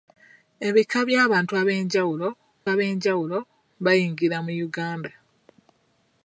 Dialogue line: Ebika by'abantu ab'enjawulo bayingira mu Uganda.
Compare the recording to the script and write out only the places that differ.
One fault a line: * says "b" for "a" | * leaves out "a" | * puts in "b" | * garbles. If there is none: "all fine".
* puts in "ab'enjawulo"